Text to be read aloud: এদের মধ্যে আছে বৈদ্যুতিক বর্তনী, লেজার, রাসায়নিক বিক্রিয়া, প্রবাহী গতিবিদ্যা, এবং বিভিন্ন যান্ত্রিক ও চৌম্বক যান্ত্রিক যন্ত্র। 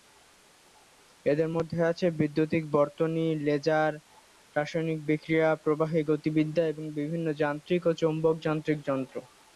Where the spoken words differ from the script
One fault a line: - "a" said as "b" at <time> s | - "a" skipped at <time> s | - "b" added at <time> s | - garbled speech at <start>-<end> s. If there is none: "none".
none